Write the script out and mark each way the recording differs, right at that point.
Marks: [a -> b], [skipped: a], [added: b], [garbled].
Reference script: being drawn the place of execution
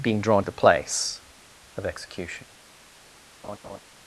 being drawn the place of execution